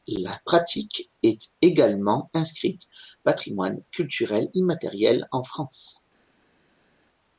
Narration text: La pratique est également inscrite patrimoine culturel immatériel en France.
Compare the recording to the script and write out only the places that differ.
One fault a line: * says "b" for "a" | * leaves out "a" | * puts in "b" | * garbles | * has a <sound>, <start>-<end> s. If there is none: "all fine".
all fine